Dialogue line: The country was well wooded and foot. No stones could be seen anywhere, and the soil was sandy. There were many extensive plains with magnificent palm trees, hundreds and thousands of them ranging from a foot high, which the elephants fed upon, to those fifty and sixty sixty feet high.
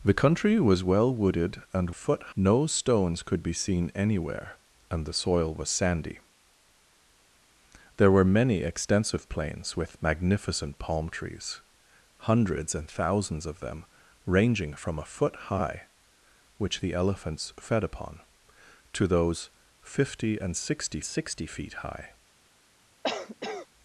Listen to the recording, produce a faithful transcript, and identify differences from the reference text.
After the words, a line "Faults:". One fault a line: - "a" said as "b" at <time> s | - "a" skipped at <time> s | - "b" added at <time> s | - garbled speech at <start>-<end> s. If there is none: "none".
The country was well wooded and foot. No stones could be seen anywhere, and the soil was sandy. There were many extensive plains with magnificent palm trees, hundreds and thousands of them ranging from a foot high, which the elephants fed upon, to those fifty and sixty sixty feet high.
Faults:
none